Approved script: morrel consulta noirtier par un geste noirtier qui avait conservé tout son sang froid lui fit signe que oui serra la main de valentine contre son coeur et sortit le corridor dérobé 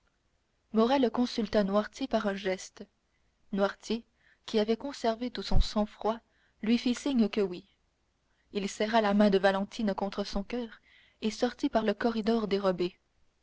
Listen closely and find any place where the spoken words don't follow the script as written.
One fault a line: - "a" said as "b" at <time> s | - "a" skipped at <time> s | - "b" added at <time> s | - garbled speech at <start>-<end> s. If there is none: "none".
- "il" added at 8.5 s
- "par" added at 11.7 s